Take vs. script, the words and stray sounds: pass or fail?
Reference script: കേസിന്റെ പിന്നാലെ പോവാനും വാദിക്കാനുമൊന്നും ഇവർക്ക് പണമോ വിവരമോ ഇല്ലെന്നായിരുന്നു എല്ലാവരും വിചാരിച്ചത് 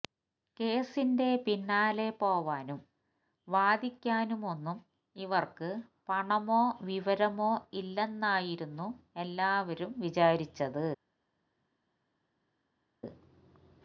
pass